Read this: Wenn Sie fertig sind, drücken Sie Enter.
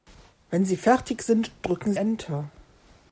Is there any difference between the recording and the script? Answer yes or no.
yes